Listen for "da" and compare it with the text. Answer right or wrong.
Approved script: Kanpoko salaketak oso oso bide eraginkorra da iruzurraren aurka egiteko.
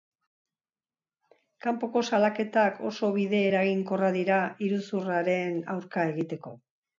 wrong